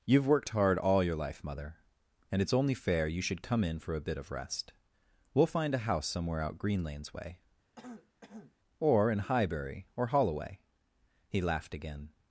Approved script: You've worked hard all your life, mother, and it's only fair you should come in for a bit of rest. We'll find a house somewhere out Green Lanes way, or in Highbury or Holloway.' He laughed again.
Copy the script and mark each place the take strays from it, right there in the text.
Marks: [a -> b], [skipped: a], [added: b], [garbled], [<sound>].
You've worked hard all your life, mother, and it's only fair you should come in for a bit of rest. We'll find a house somewhere out Green Lanes way, [throat clearing] or in Highbury or Holloway.' He laughed again.